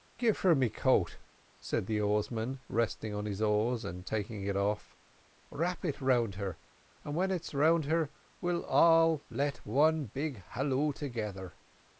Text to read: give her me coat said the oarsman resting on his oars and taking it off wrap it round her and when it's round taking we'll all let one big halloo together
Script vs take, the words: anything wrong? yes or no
yes